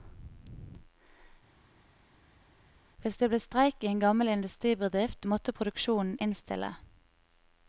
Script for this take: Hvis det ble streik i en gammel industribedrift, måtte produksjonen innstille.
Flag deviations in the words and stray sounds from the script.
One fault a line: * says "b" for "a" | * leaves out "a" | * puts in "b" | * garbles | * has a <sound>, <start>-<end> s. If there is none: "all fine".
all fine